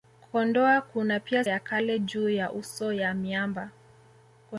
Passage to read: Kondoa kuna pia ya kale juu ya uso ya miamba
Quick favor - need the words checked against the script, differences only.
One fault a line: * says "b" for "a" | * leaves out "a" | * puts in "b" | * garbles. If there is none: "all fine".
all fine